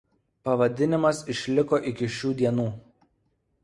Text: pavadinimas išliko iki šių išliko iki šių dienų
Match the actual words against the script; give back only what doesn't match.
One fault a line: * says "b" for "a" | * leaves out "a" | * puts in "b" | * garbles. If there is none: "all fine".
* leaves out "išliko iki šių"